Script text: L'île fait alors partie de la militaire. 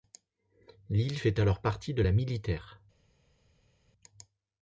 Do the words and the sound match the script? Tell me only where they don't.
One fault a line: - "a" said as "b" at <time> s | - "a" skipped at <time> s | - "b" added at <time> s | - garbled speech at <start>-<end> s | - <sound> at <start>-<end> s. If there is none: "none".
none